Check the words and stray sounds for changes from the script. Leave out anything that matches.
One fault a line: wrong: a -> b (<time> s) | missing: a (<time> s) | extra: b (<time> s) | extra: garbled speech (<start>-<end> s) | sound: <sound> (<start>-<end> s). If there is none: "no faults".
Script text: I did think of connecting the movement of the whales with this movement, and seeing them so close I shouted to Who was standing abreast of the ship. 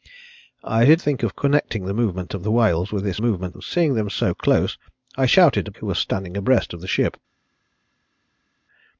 no faults